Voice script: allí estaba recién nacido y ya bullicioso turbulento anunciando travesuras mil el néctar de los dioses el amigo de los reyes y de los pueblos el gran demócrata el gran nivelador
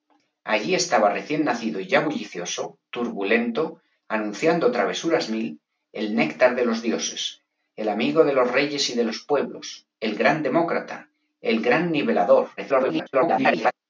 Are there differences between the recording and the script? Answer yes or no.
yes